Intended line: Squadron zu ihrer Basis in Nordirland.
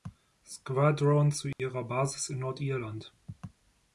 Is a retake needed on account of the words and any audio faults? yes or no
yes